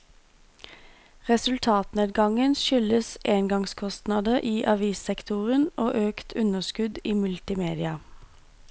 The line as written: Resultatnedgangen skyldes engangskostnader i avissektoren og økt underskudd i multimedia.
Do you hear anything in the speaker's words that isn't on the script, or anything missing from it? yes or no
no